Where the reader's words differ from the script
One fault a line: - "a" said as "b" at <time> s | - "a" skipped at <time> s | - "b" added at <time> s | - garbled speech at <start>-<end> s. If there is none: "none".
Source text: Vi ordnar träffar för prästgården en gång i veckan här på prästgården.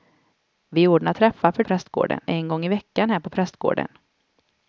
none